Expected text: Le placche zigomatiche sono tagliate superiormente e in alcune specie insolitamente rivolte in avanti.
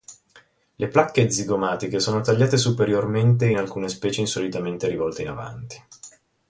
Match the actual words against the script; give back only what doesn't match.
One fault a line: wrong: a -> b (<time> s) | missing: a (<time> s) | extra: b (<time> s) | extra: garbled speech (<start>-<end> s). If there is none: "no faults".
missing: in (3.5 s)